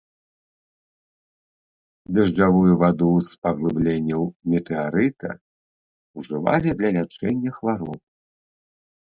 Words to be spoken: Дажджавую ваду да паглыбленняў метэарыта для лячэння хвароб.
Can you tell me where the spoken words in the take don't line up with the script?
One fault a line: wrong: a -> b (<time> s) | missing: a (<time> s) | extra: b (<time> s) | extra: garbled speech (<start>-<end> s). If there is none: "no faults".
wrong: да -> з (3.3 s)
extra: ўжывалі (6.2 s)